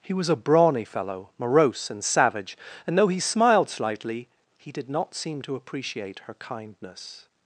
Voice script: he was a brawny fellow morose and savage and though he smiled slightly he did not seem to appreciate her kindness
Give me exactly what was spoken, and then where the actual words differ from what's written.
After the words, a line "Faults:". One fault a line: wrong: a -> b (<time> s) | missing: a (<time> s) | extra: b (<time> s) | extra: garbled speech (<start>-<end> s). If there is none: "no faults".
he was a brawny fellow morose and savage and though he smiled slightly he did not seem to appreciate her kindness
Faults:
no faults